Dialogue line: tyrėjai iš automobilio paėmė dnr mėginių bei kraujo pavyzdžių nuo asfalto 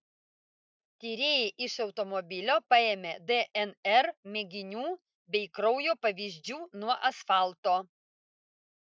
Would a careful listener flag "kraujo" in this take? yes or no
no